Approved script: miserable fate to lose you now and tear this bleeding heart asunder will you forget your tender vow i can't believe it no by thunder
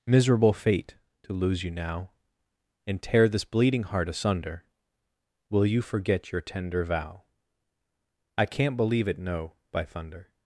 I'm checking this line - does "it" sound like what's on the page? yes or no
yes